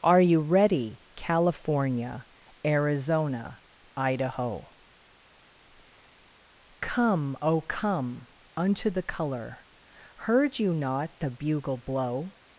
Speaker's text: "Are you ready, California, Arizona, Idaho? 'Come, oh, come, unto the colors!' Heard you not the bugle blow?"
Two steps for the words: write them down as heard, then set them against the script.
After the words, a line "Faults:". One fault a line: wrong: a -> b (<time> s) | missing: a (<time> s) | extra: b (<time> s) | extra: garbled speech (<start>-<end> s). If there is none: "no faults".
"Are you ready, California, Arizona, Idaho? 'Come, oh, come, unto the color!' Heard you not the bugle blow?"
Faults:
wrong: colors -> color (9.0 s)